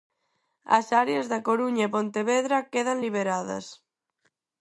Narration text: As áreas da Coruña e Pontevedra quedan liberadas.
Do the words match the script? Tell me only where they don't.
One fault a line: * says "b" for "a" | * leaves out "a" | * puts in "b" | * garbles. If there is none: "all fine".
all fine